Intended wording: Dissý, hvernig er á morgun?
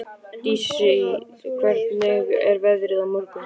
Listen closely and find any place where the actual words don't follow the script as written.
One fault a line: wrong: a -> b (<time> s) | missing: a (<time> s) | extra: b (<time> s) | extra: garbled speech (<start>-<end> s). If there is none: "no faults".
extra: veðrið (2.7 s)